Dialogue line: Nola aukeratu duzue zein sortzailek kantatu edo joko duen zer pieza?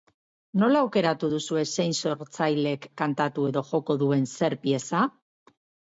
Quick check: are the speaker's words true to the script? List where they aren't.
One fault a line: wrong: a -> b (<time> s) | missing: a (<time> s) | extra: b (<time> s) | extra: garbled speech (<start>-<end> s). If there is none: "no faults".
no faults